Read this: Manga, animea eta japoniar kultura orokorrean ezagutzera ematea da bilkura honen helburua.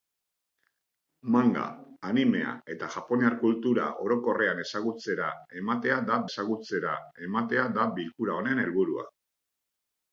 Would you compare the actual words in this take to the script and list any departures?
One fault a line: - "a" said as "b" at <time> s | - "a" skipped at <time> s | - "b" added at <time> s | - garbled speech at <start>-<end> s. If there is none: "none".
- "ezagutzera ematea da" added at 6.3 s